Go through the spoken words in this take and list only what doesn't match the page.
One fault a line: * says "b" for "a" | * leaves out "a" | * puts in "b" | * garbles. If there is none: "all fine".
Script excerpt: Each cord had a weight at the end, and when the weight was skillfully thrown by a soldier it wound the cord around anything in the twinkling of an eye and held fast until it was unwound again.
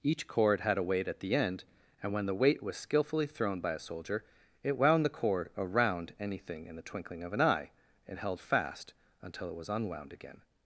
all fine